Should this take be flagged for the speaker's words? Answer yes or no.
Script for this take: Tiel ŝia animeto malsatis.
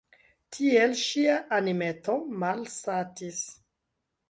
no